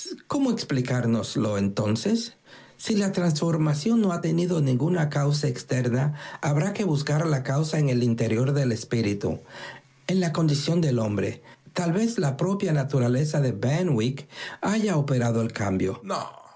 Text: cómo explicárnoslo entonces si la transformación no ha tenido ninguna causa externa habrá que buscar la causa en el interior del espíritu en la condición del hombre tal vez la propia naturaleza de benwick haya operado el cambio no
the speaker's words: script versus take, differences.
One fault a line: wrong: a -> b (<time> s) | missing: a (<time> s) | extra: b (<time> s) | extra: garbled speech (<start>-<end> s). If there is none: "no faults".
no faults